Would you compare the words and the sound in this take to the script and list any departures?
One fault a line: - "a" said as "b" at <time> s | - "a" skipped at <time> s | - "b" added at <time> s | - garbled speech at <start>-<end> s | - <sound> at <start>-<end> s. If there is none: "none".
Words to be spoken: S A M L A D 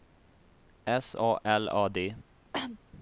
- "M" skipped at 1.4 s
- cough at 2.5-2.8 s